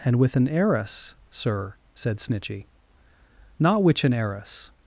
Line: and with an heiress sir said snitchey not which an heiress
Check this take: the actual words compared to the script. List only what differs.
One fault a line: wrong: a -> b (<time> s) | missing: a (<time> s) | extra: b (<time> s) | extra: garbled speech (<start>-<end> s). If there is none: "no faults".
no faults